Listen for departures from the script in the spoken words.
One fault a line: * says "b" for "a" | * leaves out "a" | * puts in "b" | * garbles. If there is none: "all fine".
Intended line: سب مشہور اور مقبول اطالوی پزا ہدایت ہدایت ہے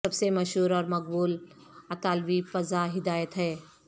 * puts in "سے"
* leaves out "ہدایت"